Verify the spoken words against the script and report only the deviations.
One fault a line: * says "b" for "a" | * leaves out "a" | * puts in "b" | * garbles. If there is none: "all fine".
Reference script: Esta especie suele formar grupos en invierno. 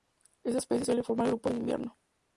all fine